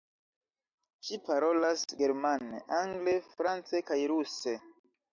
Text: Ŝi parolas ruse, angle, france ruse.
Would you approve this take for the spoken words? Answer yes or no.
no